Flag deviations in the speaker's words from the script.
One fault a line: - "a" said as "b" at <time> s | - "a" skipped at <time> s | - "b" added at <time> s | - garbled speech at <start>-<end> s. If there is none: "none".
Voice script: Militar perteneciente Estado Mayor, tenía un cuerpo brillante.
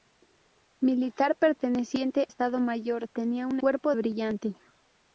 none